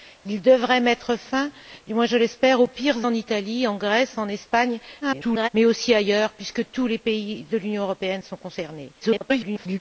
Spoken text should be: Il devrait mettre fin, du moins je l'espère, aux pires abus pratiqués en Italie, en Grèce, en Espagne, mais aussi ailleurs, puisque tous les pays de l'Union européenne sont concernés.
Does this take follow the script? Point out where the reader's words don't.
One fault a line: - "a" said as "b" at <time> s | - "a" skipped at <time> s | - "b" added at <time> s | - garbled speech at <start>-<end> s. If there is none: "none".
- "abus pratiqués" skipped at 3.1 s
- garbled speech at 5.0-5.5 s
- garbled speech at 9.0-9.8 s